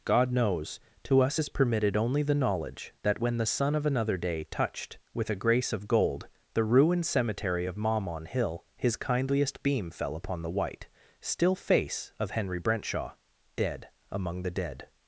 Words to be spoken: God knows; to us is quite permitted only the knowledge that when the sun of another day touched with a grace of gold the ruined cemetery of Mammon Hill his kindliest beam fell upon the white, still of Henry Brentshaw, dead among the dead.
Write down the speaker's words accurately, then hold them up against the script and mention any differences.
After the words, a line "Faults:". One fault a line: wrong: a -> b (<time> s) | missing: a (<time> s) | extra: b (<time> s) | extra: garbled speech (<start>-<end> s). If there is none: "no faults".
God knows; to us is permitted only the knowledge that when the sun of another day touched with a grace of gold the ruined cemetery of Mammon Hill his kindliest beam fell upon the white, still face of Henry Brentshaw, dead among the dead.
Faults:
missing: quite (1.5 s)
extra: face (11.6 s)